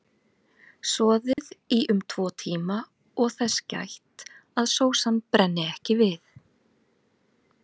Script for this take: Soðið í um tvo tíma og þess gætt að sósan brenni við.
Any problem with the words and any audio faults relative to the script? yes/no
yes